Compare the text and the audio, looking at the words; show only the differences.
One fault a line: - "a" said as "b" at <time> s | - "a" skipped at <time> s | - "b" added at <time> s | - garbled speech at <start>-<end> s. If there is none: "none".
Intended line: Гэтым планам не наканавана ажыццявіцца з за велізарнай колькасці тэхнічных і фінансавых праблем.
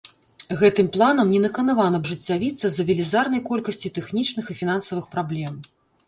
none